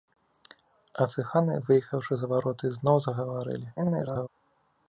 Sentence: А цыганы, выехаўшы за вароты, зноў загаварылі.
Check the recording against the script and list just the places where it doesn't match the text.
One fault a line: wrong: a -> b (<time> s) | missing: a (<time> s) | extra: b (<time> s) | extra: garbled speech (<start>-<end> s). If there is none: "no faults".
extra: garbled speech (3.8-4.3 s)